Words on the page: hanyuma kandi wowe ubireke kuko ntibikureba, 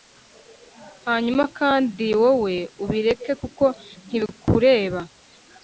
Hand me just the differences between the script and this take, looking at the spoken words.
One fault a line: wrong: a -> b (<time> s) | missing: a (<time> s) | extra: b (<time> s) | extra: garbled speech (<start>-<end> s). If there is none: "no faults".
no faults